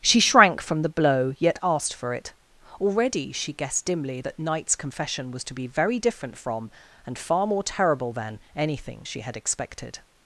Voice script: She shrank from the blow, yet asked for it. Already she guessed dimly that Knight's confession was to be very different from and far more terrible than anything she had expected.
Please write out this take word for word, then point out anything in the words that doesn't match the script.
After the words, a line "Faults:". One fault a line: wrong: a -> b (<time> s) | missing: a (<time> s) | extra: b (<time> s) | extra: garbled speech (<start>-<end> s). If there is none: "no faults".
She shrank from the blow, yet asked for it. Already she guessed dimly that Knight's confession was to be very different from and far more terrible than anything she had expected.
Faults:
no faults